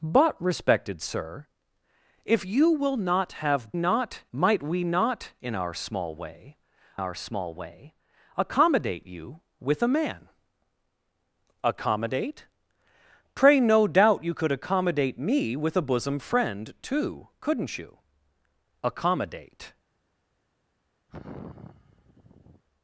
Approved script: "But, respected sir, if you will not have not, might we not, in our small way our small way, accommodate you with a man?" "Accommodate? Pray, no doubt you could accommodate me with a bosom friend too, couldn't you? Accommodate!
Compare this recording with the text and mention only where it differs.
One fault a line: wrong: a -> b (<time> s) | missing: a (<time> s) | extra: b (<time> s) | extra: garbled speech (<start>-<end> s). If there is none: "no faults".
no faults